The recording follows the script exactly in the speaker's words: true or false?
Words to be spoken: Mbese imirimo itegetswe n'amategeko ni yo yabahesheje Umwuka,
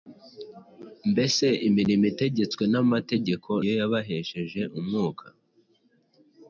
false